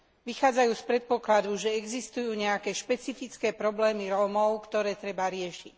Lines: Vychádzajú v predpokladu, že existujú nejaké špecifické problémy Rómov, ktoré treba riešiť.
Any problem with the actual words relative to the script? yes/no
yes